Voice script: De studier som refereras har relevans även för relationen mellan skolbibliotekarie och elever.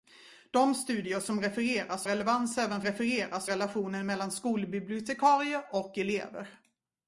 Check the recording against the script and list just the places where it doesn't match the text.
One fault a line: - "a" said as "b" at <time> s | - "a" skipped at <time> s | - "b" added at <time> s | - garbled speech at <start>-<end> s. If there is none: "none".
- "har" skipped at 2.0 s
- "för" said as "refereras" at 2.8 s